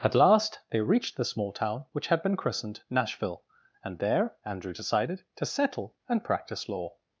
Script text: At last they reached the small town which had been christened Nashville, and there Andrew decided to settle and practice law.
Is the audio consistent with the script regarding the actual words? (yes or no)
yes